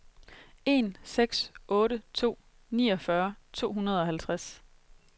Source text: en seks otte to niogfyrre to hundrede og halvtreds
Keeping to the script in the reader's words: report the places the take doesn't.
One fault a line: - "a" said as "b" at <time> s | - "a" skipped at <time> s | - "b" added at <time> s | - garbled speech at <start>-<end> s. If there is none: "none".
none